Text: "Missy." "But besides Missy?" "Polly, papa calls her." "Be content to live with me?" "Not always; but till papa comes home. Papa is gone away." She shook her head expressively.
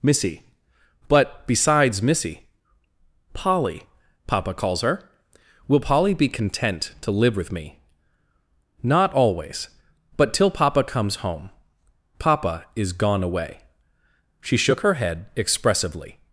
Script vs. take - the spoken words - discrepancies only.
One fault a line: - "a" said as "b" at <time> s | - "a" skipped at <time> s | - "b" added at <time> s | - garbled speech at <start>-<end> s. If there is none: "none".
- "Will Polly" added at 5.7 s